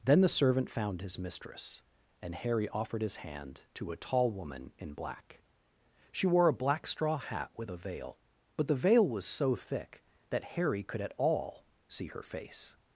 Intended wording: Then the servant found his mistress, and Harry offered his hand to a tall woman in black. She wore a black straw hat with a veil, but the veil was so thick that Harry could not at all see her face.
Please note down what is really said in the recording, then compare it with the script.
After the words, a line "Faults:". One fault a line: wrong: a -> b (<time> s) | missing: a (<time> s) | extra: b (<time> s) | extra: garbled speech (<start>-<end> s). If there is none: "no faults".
Then the servant found his mistress, and Harry offered his hand to a tall woman in black. She wore a black straw hat with a veil, but the veil was so thick that Harry could at all see her face.
Faults:
missing: not (11.0 s)